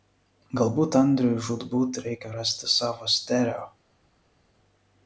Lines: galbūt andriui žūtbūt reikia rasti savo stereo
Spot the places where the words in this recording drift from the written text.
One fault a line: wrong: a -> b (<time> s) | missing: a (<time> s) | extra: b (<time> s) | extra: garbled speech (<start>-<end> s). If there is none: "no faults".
no faults